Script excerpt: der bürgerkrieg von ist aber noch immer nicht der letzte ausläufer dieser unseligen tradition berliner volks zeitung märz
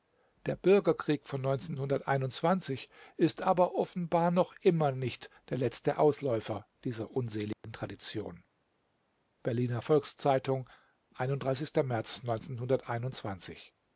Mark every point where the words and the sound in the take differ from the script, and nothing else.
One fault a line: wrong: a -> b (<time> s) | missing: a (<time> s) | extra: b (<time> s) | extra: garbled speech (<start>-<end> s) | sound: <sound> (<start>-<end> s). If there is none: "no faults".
extra: offenbar (3.8 s)
sound: dropout (7.5-7.6 s)